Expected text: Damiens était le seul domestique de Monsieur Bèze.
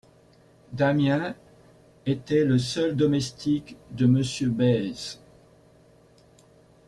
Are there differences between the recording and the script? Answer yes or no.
no